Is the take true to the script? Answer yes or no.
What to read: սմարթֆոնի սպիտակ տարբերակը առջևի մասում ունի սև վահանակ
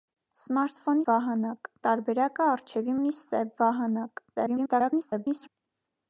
no